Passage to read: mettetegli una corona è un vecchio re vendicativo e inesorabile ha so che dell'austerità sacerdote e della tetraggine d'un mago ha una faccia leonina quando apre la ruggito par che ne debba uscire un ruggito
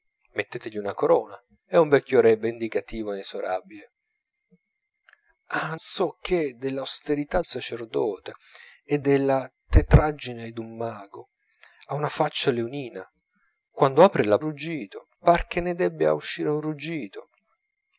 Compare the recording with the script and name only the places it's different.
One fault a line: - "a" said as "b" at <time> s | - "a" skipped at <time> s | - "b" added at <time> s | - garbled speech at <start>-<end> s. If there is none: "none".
none